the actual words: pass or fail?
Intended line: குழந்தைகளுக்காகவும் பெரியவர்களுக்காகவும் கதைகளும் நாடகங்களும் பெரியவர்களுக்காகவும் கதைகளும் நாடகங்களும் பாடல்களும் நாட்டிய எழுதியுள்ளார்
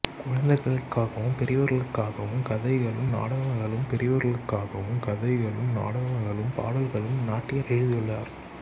pass